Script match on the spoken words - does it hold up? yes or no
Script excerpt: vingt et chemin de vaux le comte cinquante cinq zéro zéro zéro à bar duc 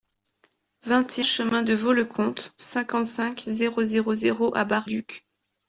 yes